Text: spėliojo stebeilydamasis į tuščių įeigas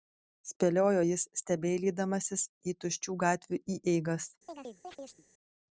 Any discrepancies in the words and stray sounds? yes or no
yes